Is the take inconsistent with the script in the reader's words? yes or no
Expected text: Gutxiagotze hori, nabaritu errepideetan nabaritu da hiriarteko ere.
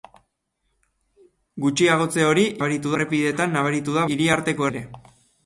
no